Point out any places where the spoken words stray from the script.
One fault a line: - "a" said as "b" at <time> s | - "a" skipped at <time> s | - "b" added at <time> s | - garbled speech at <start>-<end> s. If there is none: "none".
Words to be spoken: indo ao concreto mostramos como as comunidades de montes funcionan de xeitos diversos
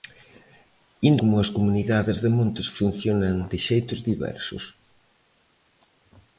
- "ao concreto mostramos" skipped at 1.2 s